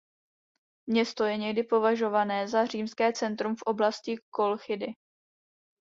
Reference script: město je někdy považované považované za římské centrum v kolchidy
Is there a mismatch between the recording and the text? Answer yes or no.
yes